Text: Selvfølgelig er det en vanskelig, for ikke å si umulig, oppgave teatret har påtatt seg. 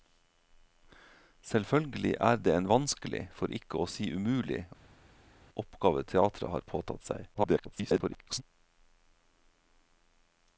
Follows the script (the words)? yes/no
no